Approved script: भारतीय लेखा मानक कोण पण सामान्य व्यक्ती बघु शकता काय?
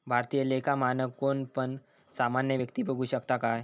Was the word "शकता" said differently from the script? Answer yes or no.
no